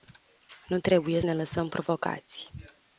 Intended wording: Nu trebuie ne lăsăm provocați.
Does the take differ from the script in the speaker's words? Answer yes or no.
no